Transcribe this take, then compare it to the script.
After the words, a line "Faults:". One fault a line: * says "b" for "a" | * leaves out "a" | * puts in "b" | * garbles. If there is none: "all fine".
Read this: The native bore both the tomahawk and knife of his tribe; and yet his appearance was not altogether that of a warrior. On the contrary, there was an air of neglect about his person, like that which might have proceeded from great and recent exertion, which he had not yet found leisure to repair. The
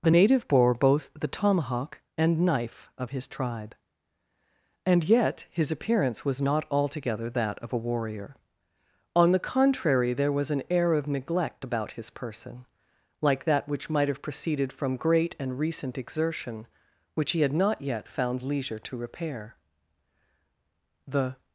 The native bore both the tomahawk and knife of his tribe; and yet his appearance was not altogether that of a warrior. On the contrary, there was an air of neglect about his person, like that which might have proceeded from great and recent exertion, which he had not yet found leisure to repair. The
Faults:
all fine